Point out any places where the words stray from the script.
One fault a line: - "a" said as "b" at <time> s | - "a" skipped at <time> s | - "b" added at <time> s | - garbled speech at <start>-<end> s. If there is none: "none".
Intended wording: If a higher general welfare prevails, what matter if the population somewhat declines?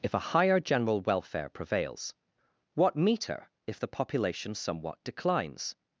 - "matter" said as "meter" at 3.0 s